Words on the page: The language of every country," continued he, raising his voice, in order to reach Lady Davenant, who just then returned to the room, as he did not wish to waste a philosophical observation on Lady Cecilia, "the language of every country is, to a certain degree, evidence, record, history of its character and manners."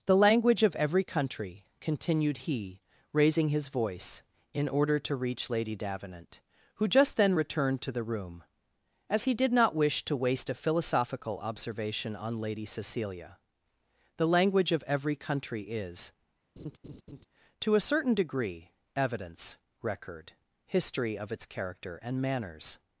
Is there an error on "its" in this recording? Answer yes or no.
no